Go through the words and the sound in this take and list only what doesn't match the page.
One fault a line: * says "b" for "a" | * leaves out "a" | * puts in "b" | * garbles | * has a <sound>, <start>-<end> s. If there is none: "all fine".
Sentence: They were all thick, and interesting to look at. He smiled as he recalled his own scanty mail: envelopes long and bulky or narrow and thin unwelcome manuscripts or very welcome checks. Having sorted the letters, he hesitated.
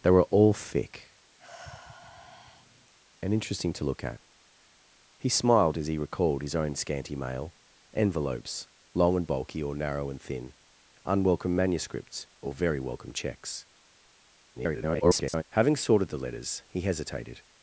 * has a sigh, 1.4-2.9 s
* garbles